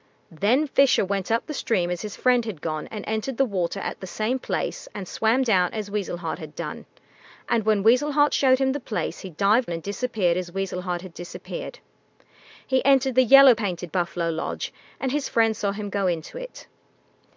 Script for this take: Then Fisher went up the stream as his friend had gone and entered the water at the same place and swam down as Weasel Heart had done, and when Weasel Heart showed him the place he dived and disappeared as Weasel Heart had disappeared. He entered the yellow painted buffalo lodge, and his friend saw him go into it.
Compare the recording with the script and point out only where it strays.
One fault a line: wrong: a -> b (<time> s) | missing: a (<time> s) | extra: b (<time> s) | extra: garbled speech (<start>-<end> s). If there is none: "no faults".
no faults